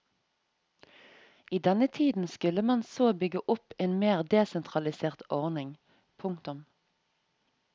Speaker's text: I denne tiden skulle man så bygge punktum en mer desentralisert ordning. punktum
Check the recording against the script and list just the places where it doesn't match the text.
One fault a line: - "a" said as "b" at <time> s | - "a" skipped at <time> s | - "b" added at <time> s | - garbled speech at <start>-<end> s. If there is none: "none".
- "punktum" said as "opp" at 3.5 s